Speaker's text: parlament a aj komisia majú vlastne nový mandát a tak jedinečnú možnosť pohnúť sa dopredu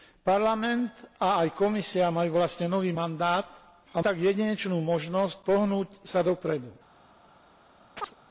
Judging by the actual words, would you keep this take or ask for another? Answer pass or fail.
pass